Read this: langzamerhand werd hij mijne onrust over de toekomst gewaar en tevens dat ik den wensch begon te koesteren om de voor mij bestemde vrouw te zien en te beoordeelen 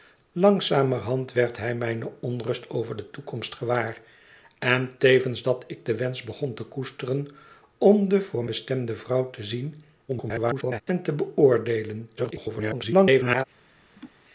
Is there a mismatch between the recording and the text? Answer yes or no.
yes